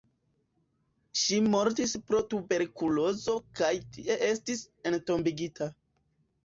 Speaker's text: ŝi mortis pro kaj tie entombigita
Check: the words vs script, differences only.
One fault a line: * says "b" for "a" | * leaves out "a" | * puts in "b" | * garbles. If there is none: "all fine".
* puts in "tuberkulozo"
* puts in "estis"